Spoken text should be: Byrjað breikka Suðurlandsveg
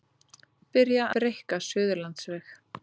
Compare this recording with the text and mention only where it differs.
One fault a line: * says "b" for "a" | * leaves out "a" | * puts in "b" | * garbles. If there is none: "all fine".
all fine